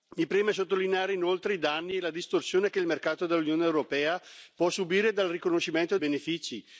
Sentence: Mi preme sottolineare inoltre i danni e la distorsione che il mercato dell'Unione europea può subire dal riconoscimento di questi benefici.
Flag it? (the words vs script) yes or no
yes